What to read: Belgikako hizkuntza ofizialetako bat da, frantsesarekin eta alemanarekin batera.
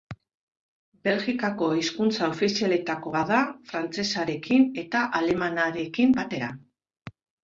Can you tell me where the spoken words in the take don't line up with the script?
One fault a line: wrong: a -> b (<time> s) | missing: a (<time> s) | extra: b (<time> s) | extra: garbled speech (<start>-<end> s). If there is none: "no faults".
no faults